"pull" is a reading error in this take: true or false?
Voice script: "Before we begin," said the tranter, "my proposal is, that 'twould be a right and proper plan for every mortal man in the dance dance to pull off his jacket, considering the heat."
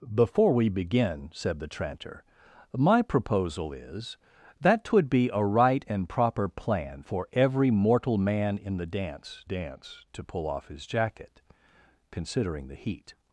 false